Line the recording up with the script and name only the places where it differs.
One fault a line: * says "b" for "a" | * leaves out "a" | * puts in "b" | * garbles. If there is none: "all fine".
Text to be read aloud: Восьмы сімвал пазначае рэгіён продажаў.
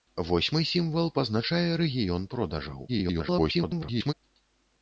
* garbles